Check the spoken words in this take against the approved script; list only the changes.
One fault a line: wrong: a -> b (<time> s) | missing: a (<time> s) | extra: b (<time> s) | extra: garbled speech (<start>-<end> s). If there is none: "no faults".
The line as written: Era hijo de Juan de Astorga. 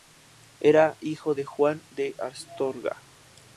no faults